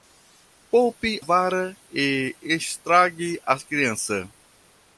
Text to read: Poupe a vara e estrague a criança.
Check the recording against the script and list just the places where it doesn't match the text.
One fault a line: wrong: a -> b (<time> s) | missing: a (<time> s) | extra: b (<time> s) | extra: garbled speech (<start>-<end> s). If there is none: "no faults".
missing: a (1.2 s)